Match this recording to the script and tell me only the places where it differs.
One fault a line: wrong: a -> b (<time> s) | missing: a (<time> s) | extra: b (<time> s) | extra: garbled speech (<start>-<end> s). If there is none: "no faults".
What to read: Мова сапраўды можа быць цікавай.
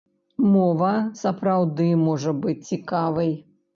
no faults